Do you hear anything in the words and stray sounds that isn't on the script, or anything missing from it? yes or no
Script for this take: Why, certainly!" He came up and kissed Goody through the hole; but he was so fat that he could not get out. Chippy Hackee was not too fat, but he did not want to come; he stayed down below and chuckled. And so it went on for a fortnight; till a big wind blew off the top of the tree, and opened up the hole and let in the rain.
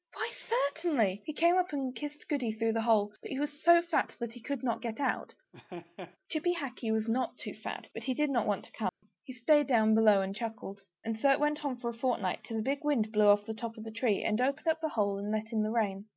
yes